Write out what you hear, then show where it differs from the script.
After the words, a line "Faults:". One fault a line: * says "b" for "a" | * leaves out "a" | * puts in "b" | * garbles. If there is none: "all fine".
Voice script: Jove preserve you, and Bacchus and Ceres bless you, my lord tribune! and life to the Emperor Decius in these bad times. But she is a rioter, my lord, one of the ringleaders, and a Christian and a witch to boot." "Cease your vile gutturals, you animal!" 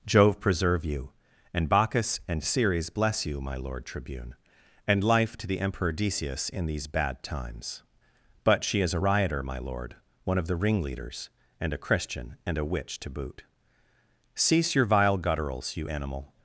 Jove preserve you, and Bacchus and Ceres bless you, my lord tribune! and life to the Emperor Decius in these bad times. But she is a rioter, my lord, one of the ringleaders, and a Christian and a witch to boot." "Cease your vile gutturals, you animal!"
Faults:
all fine